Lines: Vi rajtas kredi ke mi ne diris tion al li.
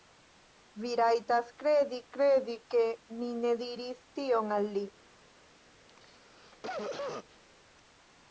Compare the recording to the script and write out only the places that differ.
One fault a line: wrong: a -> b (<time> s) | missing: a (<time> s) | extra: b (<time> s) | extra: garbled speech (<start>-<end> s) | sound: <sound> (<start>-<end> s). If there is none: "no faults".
extra: kredi (2.2 s)
sound: cough (5.9-7.4 s)